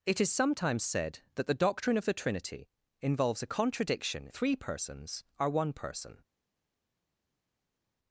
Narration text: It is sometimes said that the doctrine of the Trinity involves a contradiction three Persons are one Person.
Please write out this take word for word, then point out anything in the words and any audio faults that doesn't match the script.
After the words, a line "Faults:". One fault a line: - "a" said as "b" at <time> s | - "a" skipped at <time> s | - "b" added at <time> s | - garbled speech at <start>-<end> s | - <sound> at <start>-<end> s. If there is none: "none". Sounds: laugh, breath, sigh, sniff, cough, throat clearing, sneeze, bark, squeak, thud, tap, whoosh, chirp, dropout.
It is sometimes said that the doctrine of the Trinity involves a contradiction three Persons are one Person.
Faults:
none